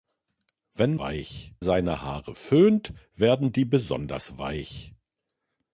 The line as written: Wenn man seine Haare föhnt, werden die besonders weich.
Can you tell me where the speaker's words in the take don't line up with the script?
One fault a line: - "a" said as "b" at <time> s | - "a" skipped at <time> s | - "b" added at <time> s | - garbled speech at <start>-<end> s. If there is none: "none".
- "man" said as "weich" at 1.0 s